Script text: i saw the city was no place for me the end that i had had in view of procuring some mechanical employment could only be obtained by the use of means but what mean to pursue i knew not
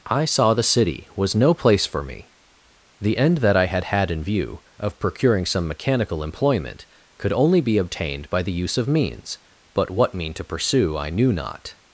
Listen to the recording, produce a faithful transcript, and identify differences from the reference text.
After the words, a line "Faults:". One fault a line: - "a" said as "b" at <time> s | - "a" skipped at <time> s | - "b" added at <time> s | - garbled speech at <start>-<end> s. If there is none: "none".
i saw the city was no place for me the end that i had had in view of procuring some mechanical employment could only be obtained by the use of means but what mean to pursue i knew not
Faults:
none